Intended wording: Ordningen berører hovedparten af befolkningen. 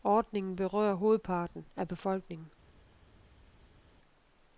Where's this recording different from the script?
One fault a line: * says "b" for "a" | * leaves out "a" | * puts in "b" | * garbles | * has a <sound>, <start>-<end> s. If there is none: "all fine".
all fine